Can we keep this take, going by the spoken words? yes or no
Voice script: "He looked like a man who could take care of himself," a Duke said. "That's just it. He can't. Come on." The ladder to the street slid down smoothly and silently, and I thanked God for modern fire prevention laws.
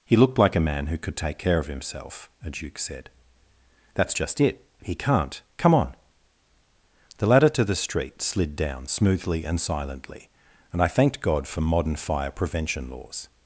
yes